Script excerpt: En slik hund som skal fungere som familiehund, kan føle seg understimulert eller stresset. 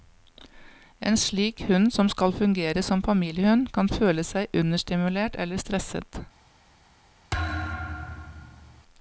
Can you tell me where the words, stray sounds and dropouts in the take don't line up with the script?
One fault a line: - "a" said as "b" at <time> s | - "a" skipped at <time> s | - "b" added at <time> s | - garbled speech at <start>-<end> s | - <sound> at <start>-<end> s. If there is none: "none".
- thud at 7.3-8.8 s